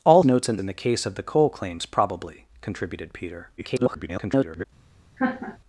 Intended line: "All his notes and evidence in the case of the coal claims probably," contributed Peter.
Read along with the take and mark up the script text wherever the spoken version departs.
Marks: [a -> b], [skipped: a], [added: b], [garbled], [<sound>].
"All [skipped: his] notes and [skipped: evidence] in the case of the coal claims probably," contributed Peter. [garbled] [laugh]